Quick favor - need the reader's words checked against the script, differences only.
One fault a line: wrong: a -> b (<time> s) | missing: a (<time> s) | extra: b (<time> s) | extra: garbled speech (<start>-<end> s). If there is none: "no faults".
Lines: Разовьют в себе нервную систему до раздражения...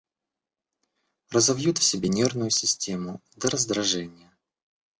no faults